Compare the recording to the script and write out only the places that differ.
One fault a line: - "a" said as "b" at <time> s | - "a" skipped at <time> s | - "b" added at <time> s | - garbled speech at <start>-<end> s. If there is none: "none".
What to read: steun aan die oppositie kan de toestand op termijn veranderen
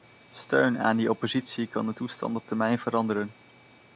none